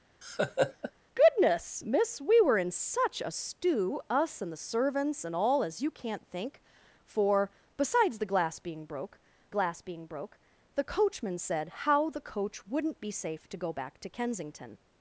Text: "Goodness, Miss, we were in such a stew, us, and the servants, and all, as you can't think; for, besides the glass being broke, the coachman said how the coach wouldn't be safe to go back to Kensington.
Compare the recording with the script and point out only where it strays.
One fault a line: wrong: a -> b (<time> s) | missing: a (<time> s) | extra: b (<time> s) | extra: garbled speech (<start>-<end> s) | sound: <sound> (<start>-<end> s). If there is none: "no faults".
sound: laugh (0.2-0.9 s)
extra: glass being broke (9.5 s)